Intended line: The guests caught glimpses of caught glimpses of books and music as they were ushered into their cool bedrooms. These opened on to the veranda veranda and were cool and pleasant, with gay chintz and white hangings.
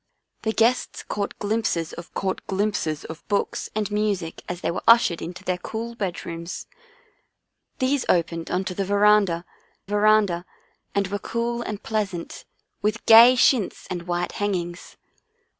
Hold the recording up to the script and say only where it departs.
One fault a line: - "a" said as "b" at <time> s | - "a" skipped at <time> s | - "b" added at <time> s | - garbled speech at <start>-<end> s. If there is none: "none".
none